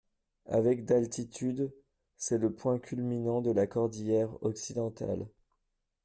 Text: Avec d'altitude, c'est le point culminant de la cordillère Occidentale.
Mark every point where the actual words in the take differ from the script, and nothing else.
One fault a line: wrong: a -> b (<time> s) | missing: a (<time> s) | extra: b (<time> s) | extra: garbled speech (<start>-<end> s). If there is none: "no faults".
no faults